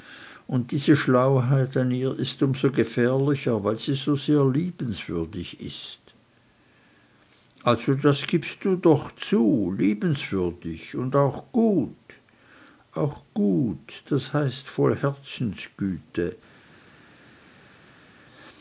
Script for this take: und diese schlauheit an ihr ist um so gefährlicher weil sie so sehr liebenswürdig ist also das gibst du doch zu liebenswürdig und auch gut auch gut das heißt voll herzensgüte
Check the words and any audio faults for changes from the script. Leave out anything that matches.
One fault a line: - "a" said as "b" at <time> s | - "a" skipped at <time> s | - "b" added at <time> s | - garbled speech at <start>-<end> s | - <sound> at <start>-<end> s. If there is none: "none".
none